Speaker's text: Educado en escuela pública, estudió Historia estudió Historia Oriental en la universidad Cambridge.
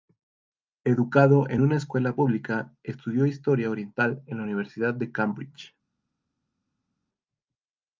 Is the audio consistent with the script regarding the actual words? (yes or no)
no